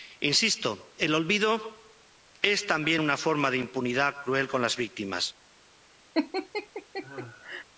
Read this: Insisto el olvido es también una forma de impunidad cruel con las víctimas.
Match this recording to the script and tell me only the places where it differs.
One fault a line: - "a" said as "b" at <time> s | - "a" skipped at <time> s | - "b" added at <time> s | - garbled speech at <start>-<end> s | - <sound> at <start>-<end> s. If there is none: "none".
- laugh at 6.1-7.6 s